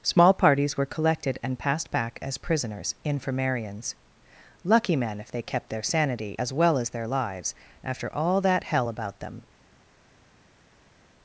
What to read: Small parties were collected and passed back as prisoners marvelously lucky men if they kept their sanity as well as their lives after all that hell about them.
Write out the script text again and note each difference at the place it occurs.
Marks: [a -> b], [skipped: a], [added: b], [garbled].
Small parties were collected and passed back as prisoners [marvelously -> infirmarians] lucky men if they kept their sanity as well as their lives after all that hell about them.